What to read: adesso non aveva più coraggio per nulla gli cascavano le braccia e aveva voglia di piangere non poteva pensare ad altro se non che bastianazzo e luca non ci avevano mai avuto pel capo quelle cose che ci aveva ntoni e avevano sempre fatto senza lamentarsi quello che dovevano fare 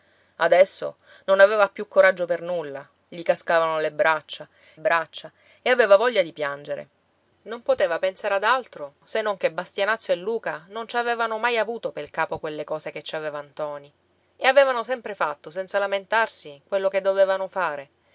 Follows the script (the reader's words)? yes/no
no